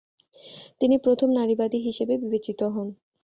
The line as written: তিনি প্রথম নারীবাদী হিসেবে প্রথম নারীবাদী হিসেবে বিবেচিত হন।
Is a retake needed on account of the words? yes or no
yes